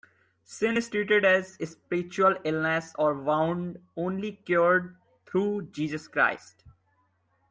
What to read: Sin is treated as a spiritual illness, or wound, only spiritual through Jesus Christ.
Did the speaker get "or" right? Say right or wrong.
right